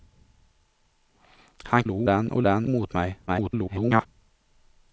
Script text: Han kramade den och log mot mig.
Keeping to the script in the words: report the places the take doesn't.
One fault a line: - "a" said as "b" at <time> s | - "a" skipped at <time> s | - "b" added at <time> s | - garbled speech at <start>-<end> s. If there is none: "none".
- "kramade" said as "log" at 1.8 s
- "log" said as "den" at 2.4 s
- garbled speech at 3.3-4.1 s